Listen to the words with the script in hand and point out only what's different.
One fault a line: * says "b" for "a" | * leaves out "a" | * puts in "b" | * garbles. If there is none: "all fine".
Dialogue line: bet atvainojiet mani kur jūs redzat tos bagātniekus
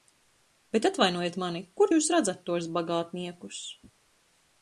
all fine